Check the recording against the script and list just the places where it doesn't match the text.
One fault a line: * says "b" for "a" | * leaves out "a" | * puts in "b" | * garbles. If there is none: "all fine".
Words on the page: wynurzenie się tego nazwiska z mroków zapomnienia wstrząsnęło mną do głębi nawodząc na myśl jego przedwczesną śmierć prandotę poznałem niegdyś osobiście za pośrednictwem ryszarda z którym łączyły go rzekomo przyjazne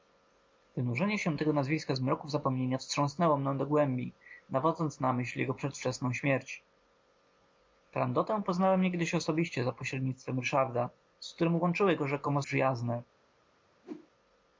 all fine